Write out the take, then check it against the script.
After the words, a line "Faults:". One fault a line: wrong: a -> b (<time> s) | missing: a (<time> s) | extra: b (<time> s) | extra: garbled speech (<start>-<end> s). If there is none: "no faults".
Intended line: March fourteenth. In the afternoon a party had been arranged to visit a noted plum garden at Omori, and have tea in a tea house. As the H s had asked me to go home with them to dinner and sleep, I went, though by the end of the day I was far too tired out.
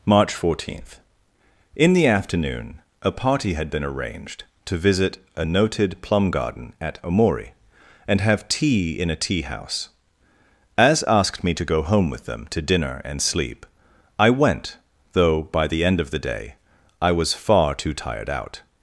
March fourteenth. In the afternoon a party had been arranged to visit a noted plum garden at Omori, and have tea in a tea house. As asked me to go home with them to dinner and sleep, I went, though by the end of the day I was far too tired out.
Faults:
missing: the H s had (11.0 s)